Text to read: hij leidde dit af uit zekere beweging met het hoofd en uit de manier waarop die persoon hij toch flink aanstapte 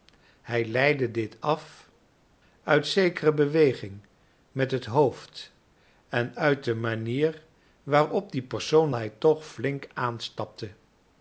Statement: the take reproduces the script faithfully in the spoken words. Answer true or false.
true